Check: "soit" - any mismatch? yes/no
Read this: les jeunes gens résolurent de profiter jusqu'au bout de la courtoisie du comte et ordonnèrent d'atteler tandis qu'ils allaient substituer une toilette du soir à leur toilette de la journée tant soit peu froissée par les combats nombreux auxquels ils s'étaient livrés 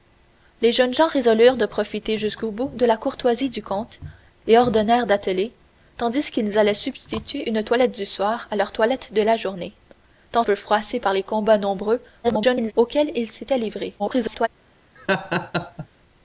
yes